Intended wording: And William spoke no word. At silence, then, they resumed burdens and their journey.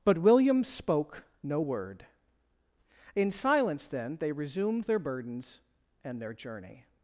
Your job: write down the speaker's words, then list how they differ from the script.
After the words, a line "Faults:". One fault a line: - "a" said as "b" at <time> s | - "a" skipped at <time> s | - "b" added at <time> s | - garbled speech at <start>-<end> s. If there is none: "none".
But William spoke no word. In silence, then, they resumed their burdens and their journey.
Faults:
- "And" said as "But" at 0.0 s
- "At" said as "In" at 3.2 s
- "their" added at 4.8 s